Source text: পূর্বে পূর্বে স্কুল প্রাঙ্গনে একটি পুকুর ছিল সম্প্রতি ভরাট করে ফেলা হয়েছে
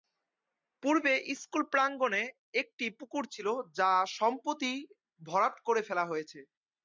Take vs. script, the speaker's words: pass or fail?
fail